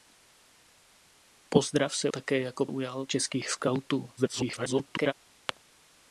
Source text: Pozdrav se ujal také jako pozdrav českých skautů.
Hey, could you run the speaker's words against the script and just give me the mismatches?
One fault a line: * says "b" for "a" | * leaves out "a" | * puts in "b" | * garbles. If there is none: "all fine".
* leaves out "ujal"
* says "ujal" for "pozdrav"
* garbles